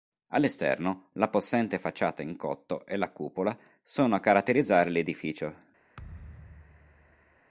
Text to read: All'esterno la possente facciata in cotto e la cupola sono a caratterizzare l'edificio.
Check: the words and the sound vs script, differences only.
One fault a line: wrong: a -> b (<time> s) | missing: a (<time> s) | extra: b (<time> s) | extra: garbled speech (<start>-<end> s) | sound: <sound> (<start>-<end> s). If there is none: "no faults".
sound: thud (6.0-7.4 s)